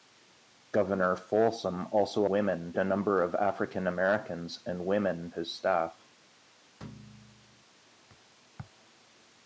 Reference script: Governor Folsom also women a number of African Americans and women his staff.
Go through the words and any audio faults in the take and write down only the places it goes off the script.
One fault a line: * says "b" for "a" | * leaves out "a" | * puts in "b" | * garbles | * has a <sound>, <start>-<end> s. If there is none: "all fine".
* has a thud, 6.8-7.6 s